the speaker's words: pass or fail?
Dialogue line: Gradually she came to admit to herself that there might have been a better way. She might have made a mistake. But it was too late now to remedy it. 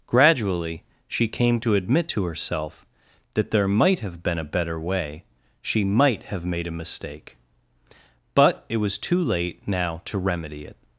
pass